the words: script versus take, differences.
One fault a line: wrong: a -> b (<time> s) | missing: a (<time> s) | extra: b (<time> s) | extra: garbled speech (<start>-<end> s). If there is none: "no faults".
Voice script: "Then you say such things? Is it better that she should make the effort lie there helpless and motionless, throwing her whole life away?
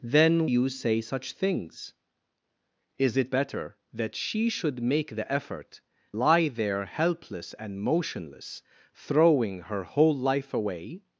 no faults